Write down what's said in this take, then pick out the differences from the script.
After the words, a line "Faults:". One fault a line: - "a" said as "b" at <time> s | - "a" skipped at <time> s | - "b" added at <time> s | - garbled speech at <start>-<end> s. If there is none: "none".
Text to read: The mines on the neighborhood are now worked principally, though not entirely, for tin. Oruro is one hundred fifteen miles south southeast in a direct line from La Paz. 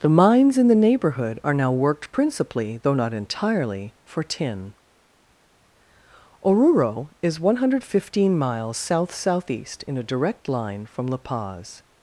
The mines in the neighborhood are now worked principally, though not entirely, for tin. Oruro is one hundred fifteen miles south southeast in a direct line from La Paz.
Faults:
- "on" said as "in" at 0.6 s